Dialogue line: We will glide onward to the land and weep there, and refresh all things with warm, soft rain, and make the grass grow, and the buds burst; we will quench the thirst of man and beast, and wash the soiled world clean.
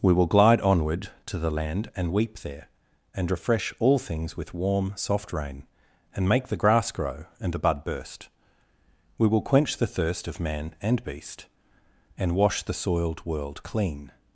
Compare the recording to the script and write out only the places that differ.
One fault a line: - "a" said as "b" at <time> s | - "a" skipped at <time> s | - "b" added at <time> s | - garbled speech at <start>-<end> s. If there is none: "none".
- "buds" said as "bud" at 7.6 s